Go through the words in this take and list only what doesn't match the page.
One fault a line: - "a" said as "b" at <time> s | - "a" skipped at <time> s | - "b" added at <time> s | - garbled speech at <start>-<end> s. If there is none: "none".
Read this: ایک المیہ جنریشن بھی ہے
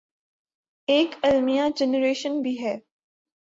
none